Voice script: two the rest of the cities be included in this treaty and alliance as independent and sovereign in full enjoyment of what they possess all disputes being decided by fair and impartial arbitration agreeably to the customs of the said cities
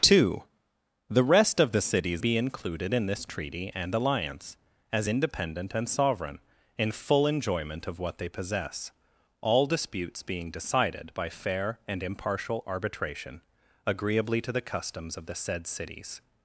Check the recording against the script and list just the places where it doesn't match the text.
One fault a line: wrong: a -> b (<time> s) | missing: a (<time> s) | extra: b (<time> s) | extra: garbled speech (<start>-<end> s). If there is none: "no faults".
no faults